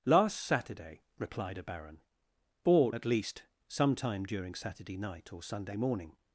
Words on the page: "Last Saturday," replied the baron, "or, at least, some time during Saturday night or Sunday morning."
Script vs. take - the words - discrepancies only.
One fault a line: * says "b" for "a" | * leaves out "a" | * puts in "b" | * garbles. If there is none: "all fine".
* says "a" for "the"